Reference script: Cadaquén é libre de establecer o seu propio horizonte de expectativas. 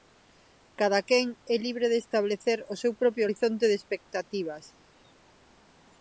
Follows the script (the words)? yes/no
yes